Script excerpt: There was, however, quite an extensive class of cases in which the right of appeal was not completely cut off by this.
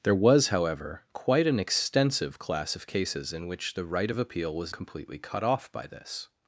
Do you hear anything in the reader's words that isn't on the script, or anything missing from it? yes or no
yes